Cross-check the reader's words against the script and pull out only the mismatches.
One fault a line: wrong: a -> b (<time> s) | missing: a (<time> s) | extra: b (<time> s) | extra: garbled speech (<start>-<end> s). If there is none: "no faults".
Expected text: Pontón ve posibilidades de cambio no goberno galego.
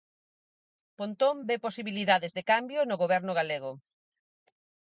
no faults